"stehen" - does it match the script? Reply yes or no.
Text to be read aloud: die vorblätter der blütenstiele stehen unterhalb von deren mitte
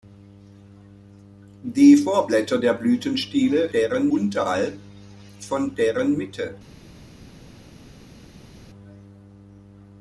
no